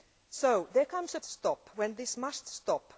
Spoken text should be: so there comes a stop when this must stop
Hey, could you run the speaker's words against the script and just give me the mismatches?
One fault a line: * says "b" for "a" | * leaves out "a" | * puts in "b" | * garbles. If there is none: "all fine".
all fine